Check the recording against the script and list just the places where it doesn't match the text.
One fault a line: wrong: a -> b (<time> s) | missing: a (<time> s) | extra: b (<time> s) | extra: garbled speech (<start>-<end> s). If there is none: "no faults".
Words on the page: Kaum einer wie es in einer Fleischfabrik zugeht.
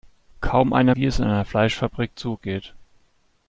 no faults